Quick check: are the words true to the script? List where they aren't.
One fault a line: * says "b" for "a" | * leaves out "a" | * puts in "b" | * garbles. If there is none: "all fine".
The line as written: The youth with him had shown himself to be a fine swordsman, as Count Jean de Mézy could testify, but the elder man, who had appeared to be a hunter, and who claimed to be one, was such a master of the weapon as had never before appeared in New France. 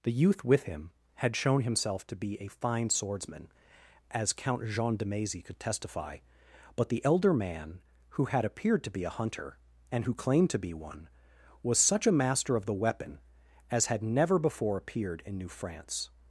all fine